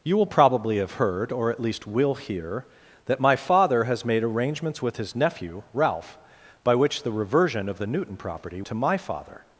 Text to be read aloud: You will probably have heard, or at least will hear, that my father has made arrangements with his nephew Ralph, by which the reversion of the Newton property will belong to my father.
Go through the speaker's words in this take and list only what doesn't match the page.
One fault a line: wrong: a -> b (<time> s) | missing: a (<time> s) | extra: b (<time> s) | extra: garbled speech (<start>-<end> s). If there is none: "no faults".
missing: will belong (8.6 s)